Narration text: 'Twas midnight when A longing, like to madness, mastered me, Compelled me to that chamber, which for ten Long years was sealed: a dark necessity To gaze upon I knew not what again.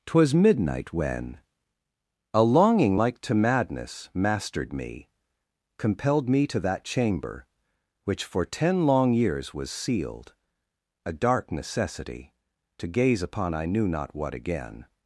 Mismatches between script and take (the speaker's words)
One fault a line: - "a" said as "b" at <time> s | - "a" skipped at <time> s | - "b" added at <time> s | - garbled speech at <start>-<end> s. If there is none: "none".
none